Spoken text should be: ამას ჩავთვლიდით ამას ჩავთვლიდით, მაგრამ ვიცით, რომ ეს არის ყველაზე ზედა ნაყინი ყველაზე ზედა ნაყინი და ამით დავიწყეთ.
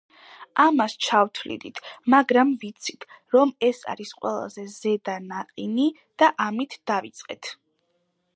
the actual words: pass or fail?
fail